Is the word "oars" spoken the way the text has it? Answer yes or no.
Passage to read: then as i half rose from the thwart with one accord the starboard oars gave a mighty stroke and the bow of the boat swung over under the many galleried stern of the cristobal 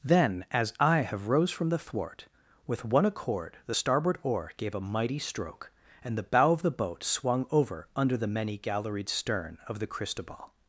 no